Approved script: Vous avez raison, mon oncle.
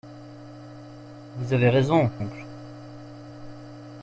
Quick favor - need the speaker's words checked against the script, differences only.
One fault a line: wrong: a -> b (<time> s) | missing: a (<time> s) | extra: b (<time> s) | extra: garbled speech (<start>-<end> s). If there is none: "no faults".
missing: mon (2.1 s)